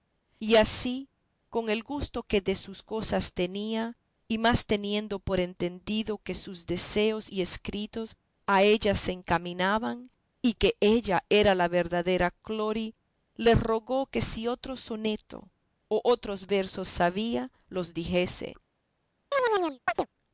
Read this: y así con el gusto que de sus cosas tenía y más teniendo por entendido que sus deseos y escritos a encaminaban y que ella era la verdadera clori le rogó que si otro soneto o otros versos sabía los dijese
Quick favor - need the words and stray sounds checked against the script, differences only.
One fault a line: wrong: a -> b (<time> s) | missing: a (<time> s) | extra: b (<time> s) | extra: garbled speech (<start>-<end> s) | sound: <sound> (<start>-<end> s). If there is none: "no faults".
extra: ella se (8.6 s)
sound: chirp (19.3-20.1 s)